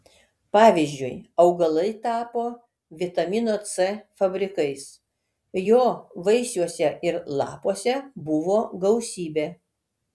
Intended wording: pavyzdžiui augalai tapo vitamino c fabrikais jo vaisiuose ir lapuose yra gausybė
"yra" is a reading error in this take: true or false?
true